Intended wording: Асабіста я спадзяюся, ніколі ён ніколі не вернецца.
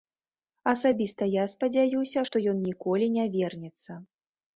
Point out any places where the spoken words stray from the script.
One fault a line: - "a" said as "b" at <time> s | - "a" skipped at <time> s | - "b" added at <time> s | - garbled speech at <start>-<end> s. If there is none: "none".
- "ніколі" said as "што" at 2.3 s